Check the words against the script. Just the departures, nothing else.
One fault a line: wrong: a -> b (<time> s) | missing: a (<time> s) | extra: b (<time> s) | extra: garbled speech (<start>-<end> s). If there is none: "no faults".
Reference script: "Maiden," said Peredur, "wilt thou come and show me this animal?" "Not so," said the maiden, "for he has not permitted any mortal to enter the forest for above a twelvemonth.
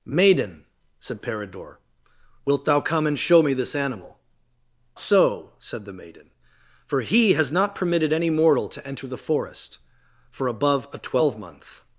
missing: Not (4.2 s)